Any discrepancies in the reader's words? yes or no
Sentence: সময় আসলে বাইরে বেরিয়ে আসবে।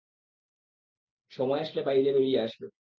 no